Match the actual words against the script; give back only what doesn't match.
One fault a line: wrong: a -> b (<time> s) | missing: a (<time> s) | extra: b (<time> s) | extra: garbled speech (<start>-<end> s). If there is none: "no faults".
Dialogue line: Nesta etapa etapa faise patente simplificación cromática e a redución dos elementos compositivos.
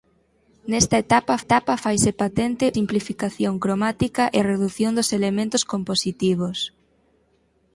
no faults